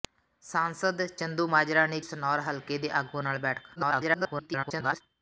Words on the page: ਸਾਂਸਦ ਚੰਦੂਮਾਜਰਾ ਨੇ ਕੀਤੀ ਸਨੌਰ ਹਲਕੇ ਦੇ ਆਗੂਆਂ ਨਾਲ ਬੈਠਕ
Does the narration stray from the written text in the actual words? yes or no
yes